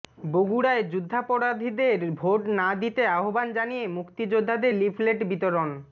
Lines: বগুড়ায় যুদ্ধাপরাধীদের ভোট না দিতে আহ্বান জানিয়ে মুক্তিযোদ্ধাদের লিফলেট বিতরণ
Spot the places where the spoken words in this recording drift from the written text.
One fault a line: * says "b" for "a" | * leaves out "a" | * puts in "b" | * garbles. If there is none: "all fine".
all fine